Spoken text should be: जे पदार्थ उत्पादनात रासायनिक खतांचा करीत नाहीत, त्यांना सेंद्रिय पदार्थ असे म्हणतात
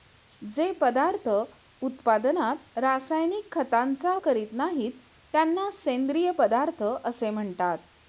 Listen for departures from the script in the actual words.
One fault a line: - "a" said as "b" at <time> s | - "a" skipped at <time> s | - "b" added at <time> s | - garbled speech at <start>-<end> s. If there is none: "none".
none